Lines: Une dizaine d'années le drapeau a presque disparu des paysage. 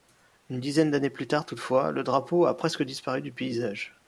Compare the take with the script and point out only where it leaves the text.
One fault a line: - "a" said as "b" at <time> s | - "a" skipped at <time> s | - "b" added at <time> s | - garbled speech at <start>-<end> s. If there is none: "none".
- "plus tard toutefois" added at 1.1 s
- "des" said as "du" at 3.2 s